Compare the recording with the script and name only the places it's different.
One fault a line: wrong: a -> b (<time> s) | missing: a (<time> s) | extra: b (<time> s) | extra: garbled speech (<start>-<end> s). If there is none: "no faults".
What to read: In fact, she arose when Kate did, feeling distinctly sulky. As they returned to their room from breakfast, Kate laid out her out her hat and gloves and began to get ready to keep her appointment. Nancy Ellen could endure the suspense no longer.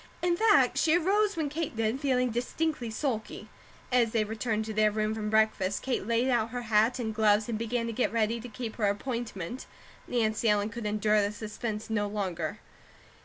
missing: out her (6.6 s)